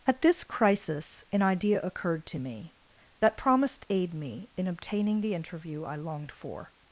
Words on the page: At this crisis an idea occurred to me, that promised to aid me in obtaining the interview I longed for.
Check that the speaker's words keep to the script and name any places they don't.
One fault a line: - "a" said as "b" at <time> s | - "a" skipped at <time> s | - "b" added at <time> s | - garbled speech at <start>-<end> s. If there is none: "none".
- "to" skipped at 3.9 s